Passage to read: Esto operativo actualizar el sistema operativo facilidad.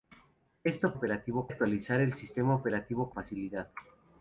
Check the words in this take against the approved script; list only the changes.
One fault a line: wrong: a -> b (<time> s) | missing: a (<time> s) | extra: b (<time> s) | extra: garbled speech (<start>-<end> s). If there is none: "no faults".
no faults